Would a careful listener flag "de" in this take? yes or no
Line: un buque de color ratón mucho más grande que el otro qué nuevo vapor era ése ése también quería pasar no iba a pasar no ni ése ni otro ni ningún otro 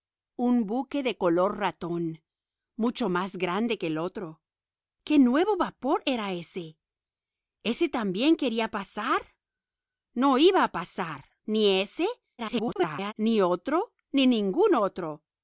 no